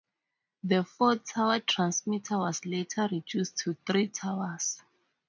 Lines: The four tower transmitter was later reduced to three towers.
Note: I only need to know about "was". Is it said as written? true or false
true